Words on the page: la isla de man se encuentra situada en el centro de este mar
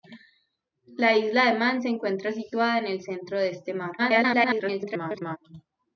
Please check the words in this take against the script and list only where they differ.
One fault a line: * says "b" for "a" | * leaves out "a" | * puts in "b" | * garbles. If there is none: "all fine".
* garbles